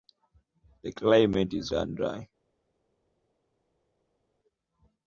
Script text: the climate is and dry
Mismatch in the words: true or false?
false